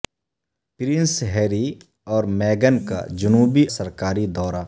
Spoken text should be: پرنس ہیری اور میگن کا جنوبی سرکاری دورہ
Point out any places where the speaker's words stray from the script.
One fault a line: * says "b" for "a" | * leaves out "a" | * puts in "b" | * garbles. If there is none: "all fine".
all fine